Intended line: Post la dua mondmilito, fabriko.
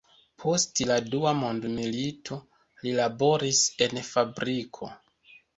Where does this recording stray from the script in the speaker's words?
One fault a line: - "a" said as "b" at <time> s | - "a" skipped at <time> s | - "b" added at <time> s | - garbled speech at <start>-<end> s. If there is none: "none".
- "li laboris en" added at 2.9 s